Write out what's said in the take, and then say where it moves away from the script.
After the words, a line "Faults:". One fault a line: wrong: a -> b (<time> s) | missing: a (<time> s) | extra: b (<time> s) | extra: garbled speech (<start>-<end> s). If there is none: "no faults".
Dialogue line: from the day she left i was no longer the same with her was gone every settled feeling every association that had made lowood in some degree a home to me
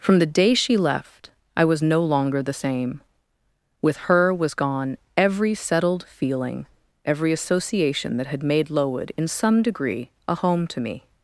from the day she left i was no longer the same with her was gone every settled feeling every association that had made lowood in some degree a home to me
Faults:
no faults